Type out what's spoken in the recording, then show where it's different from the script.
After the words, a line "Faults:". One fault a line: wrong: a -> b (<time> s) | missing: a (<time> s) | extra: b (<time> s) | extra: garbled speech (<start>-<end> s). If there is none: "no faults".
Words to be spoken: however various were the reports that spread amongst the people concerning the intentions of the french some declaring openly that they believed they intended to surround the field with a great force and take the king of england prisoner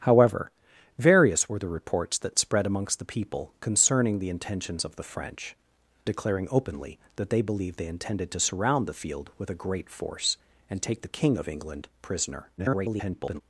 however various were the reports that spread amongst the people concerning the intentions of the french declaring openly that they believed they intended to surround the field with a great force and take the king of england prisoner [garbled]
Faults:
missing: some (5.6 s)
extra: garbled speech (12.6-13.4 s)